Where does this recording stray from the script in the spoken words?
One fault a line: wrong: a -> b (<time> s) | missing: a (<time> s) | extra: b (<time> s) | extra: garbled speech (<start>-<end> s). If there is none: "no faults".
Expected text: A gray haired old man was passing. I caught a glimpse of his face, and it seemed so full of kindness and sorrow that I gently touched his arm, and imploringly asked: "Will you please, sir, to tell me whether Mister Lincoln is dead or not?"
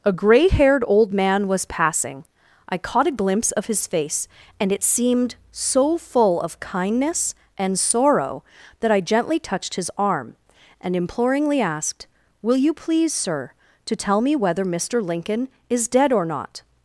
no faults